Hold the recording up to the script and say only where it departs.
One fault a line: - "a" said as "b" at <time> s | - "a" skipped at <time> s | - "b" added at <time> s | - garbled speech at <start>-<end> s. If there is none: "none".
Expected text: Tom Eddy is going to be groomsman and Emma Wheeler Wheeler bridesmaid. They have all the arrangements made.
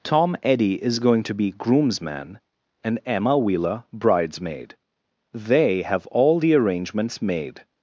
- "Wheeler" skipped at 3.8 s